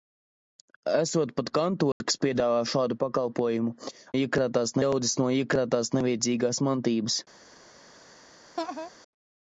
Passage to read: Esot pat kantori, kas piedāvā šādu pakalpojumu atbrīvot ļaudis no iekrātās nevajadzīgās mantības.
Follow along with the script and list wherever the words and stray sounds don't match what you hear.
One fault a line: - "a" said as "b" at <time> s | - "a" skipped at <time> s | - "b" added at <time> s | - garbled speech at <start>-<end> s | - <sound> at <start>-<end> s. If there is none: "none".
- dropout at 1.9-2.0 s
- "atbrīvot" said as "iekrātās" at 4.2 s
- laugh at 8.6-8.9 s